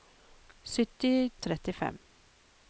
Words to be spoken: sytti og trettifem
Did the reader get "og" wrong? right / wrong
right